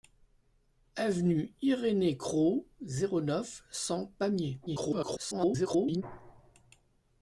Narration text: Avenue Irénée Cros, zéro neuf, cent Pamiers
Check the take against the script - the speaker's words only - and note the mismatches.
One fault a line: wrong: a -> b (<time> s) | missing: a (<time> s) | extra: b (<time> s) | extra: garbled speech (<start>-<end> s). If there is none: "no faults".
extra: garbled speech (4.7-6.0 s)